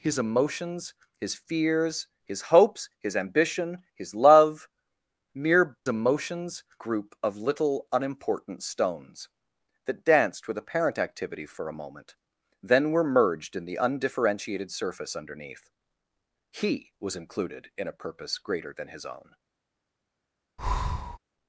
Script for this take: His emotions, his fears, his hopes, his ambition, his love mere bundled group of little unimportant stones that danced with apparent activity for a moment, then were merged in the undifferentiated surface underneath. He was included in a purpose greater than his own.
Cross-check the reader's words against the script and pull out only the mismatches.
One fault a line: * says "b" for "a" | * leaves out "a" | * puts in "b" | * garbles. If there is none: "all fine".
* says "emotions" for "bundled"